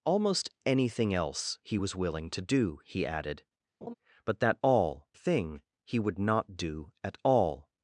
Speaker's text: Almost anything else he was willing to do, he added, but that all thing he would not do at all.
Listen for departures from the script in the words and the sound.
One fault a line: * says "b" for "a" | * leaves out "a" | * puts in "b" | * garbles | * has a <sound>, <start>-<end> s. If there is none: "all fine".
* has a laugh, 3.8-3.9 s